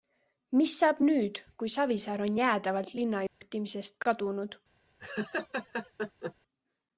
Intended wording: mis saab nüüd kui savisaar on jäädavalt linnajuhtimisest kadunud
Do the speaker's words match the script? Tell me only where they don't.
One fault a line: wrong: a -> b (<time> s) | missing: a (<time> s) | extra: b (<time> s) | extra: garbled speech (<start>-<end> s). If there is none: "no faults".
no faults